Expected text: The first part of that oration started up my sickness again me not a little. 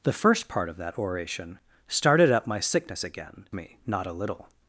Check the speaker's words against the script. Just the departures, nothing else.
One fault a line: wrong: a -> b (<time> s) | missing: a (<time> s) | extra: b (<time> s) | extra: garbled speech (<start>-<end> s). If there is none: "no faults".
no faults